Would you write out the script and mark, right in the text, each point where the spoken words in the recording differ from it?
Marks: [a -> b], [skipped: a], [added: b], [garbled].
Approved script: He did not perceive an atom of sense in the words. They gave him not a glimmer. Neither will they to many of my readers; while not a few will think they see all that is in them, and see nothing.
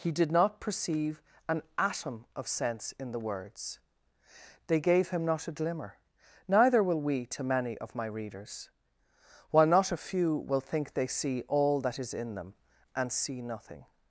He did not perceive an atom of sense in the words. They gave him not a glimmer. Neither will [they -> we] to many of my readers; while not a few will think they see all that is in them, and see nothing.